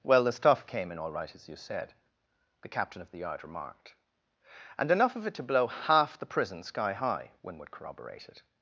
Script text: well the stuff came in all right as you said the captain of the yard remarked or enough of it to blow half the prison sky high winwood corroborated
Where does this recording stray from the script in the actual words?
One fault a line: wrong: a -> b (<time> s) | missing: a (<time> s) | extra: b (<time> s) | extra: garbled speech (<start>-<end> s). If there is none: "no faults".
wrong: or -> and (4.8 s)